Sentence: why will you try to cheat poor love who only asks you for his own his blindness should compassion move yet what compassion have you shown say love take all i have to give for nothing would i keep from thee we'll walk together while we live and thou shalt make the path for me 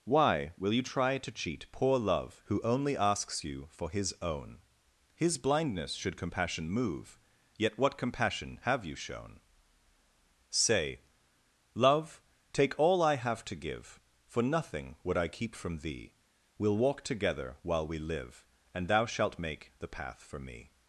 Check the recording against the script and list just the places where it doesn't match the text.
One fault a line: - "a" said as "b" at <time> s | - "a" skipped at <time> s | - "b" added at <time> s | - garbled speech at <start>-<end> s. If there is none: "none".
none